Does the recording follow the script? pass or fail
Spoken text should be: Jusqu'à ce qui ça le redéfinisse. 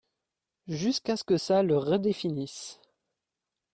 fail